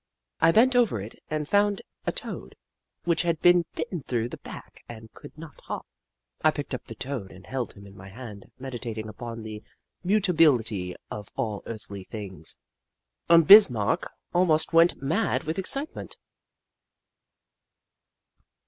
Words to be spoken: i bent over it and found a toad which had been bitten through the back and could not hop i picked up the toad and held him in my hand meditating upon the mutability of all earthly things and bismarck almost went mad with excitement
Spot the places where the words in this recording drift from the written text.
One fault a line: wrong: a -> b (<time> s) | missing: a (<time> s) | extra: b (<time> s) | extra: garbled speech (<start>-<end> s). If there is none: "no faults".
no faults